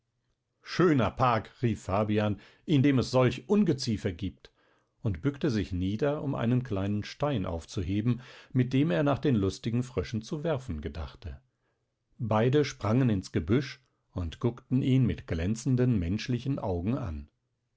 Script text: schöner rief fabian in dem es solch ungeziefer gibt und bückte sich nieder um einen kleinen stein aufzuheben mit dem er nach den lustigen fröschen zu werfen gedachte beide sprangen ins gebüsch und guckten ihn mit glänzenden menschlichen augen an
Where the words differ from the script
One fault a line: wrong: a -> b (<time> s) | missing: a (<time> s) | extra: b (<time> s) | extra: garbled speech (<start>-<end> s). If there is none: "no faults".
extra: park (1.1 s)